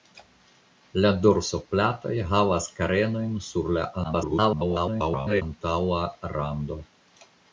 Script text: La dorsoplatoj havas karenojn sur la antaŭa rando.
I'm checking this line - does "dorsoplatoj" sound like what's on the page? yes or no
yes